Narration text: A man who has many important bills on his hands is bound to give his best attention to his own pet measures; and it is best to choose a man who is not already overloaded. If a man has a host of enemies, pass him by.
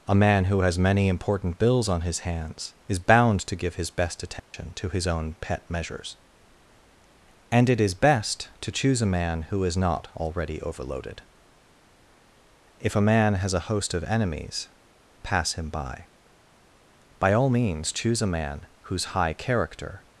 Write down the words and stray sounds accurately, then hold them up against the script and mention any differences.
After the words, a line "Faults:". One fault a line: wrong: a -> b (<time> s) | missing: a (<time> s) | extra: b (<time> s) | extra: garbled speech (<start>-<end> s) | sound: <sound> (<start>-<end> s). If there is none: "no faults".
A man who has many important bills on his hands is bound to give his best attention to his own pet measures; and it is best to choose a man who is not already overloaded. If a man has a host of enemies, pass him by. By all means choose a man whose high character
Faults:
sound: dropout (4.4-4.5 s)
extra: By all means choose a man whose high character (17.2 s)